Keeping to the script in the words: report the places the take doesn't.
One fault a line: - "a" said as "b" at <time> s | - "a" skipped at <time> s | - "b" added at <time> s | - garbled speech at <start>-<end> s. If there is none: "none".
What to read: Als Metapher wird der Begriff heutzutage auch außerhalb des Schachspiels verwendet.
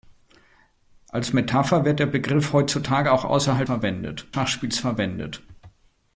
- "des" said as "verwendet" at 3.6 s